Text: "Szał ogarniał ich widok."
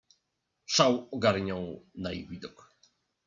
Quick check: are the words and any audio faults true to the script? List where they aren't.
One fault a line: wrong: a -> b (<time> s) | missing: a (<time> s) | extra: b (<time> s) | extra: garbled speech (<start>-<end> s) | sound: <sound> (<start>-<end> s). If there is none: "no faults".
extra: na (1.9 s)